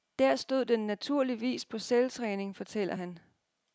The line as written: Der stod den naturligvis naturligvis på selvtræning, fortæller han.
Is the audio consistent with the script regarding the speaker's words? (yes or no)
no